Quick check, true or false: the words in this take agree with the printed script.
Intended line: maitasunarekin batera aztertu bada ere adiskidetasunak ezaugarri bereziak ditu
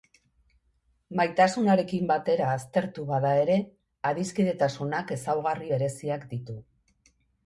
true